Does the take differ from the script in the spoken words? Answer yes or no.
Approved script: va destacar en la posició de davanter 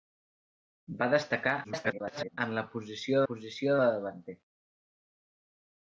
yes